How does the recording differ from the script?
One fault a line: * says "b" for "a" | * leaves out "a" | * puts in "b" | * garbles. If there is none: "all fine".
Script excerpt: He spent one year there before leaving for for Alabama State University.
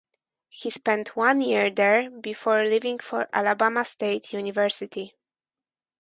* leaves out "for"